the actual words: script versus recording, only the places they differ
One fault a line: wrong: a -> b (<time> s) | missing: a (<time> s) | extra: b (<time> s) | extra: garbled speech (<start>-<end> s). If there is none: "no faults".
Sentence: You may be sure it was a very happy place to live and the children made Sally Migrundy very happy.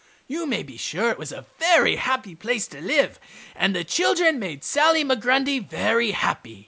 no faults